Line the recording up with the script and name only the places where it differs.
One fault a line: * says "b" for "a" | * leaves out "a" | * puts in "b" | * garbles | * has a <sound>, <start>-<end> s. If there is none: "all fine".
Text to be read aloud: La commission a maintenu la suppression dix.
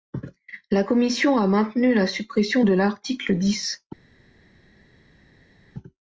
* puts in "de l'article"